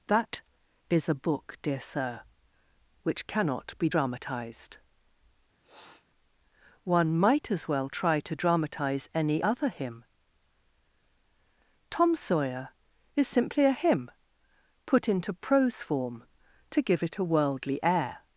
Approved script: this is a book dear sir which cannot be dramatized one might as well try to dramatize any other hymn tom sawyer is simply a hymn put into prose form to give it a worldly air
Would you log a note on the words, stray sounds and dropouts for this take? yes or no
yes